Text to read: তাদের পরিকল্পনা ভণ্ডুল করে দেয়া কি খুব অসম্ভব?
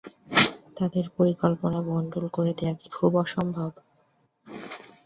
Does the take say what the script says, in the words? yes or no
yes